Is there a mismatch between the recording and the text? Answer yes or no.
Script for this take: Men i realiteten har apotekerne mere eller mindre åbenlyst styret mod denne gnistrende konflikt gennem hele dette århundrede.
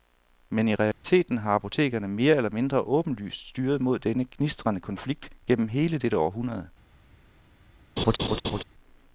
no